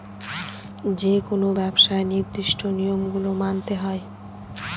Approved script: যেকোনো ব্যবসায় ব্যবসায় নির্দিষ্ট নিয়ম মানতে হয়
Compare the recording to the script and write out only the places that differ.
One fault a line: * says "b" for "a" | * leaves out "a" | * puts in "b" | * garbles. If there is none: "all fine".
* leaves out "ব্যবসায়"
* puts in "গুলো"